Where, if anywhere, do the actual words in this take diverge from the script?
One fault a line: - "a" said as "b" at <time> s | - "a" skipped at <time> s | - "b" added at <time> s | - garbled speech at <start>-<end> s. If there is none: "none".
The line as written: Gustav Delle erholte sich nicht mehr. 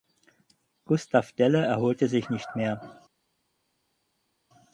none